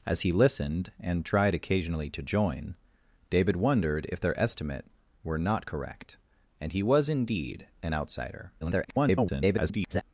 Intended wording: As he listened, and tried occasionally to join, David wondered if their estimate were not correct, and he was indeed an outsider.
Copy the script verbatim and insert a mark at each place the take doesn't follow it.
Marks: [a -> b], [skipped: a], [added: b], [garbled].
As he listened, and tried occasionally to join, David wondered if their estimate were not correct, and he was indeed an outsider. [garbled]